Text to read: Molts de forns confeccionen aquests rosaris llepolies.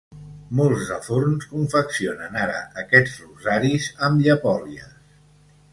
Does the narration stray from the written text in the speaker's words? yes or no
yes